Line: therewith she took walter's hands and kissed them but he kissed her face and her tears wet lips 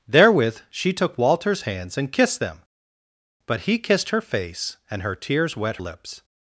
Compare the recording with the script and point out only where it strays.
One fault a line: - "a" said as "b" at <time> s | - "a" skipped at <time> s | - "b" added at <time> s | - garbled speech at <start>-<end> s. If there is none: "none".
none